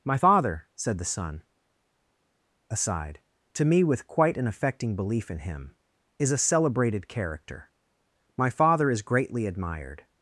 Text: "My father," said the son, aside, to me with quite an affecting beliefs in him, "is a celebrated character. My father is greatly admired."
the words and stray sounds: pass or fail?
fail